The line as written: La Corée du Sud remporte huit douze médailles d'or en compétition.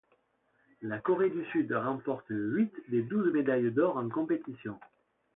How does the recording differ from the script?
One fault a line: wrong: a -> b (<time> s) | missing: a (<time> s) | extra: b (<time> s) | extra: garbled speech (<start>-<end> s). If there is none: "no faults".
extra: des (2.9 s)